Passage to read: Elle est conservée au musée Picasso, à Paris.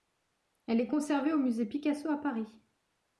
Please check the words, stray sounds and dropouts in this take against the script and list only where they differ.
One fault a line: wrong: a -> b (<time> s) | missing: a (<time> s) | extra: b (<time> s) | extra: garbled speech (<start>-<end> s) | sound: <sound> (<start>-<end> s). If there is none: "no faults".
no faults